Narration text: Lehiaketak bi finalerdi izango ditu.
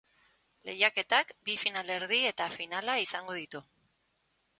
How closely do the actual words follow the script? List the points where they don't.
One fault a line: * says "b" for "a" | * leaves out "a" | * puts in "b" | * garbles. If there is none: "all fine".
* puts in "eta finala"